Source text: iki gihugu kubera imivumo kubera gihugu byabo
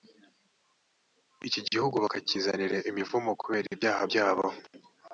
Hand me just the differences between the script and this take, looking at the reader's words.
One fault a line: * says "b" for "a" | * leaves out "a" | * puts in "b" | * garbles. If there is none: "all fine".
* says "bakakizanira" for "kubera"
* says "ibyaha" for "gihugu"